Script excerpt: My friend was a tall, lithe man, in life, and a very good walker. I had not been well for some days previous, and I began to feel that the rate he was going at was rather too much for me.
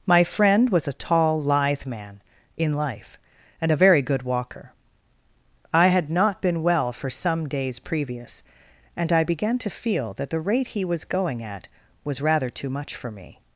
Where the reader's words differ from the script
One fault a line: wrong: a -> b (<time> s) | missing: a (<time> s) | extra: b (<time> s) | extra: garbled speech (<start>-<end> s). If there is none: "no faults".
no faults